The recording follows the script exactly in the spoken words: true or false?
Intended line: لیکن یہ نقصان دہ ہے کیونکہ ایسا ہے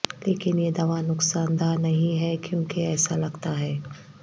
false